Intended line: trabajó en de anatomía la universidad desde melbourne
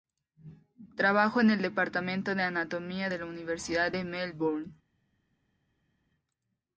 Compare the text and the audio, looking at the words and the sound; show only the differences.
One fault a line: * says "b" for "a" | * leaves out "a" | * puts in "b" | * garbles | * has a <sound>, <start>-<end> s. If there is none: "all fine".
* puts in "el departamento"
* puts in "de"
* says "de" for "desde"